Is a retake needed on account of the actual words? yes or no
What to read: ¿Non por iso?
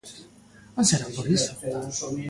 yes